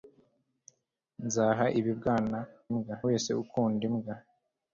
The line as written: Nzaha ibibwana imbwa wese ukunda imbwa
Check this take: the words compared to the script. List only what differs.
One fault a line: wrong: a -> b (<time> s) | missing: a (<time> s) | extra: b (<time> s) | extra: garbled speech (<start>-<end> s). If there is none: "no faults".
no faults